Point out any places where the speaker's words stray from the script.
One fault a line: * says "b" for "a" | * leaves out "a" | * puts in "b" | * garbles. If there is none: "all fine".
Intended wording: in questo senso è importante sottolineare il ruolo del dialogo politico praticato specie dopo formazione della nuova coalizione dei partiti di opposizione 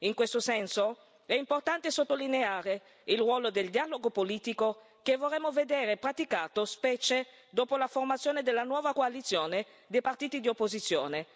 * puts in "che vorremmo vedere"
* puts in "la"